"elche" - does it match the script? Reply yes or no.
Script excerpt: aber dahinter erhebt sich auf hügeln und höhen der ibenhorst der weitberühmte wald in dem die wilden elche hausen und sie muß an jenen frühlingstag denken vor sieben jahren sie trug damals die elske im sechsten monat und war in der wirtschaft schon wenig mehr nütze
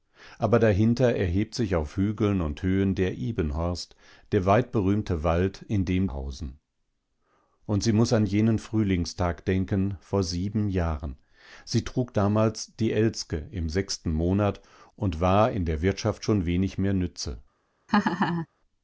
no